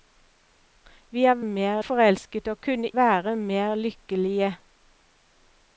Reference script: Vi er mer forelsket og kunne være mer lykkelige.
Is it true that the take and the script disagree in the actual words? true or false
false